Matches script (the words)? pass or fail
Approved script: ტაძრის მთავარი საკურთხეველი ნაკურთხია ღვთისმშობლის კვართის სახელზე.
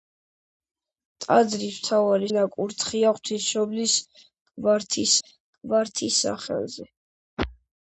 fail